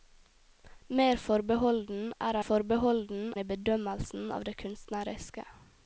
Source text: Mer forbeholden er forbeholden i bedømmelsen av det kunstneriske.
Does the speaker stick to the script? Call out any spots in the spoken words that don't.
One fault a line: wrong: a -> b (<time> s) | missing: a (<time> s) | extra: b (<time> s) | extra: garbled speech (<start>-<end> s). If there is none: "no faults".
no faults